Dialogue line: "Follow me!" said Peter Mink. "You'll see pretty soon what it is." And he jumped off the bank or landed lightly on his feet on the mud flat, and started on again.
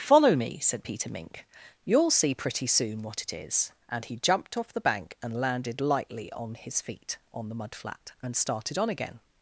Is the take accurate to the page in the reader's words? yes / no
no